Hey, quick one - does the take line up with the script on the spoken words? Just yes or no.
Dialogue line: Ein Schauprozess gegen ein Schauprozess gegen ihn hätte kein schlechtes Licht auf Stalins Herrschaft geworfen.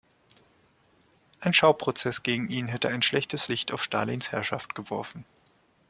no